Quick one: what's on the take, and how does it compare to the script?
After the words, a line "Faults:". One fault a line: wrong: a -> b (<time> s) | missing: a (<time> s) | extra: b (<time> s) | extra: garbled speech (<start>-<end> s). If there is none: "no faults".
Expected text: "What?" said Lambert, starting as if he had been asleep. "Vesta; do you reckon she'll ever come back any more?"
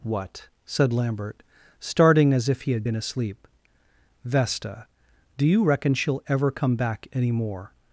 "What?" said Lambert, starting as if he had been asleep. "Vesta; do you reckon she'll ever come back any more?"
Faults:
no faults